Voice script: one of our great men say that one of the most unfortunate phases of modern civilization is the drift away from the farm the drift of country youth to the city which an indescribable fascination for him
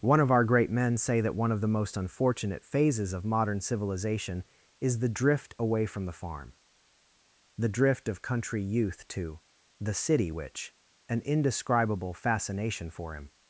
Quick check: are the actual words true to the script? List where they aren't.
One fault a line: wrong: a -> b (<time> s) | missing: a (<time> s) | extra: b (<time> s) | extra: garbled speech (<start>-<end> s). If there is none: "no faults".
no faults